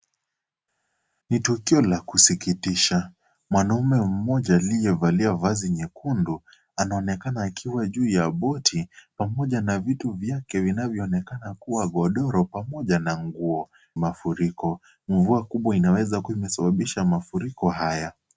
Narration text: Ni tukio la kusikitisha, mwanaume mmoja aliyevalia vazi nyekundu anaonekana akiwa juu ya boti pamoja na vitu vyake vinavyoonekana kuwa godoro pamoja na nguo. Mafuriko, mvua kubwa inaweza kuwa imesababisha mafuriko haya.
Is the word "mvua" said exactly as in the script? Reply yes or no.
yes